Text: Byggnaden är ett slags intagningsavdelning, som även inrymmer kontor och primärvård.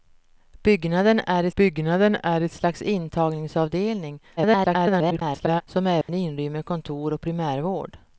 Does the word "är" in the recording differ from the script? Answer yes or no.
no